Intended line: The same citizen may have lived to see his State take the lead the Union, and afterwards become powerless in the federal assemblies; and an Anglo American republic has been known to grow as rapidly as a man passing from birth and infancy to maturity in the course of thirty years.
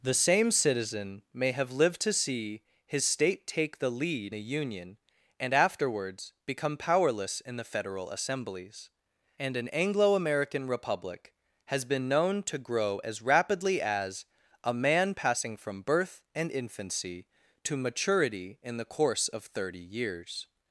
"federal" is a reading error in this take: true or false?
false